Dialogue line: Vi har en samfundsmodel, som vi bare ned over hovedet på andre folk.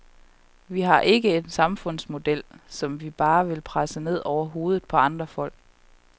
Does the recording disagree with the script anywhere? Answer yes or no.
yes